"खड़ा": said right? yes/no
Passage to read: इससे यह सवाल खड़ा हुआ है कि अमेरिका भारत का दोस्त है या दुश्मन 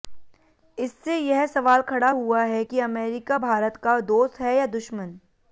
yes